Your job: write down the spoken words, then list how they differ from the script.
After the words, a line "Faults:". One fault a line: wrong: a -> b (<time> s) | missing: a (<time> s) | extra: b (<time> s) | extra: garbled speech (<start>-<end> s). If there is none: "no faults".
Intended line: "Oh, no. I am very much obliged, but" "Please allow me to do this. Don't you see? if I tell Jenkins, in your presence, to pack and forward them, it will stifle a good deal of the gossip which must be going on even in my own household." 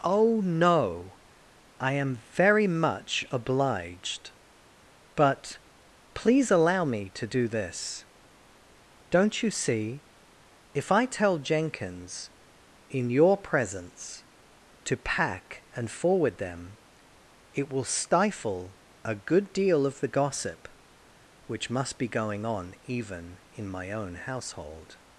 "Oh, no. I am very much obliged, but" "Please allow me to do this. Don't you see? if I tell Jenkins, in your presence, to pack and forward them, it will stifle a good deal of the gossip which must be going on even in my own household."
Faults:
no faults